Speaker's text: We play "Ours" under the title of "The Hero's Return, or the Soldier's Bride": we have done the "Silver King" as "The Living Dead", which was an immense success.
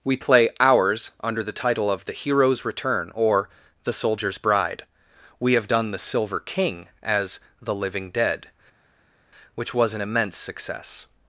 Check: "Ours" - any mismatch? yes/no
no